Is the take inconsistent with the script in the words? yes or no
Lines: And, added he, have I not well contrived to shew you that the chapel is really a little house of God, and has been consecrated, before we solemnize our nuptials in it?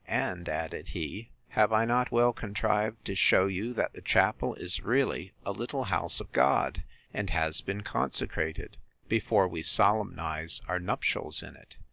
no